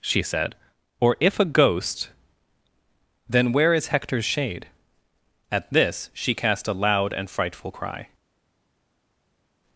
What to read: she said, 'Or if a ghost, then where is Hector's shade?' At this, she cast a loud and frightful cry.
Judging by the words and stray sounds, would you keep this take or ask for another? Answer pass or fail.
pass